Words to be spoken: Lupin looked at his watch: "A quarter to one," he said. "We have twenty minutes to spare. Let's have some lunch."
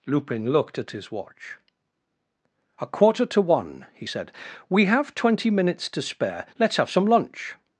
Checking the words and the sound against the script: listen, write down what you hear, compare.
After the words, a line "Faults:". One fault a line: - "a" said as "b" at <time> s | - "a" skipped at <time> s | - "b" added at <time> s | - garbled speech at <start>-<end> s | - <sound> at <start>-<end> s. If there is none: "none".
Lupin looked at his watch: "A quarter to one," he said. "We have twenty minutes to spare. Let's have some lunch."
Faults:
none